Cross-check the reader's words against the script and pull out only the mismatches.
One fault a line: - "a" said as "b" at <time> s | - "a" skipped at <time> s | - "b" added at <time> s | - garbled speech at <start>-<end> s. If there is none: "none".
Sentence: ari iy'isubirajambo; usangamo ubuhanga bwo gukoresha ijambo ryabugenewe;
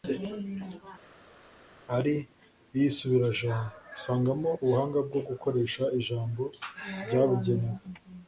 none